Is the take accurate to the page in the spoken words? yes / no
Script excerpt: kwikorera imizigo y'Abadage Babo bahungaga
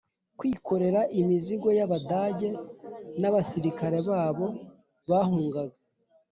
no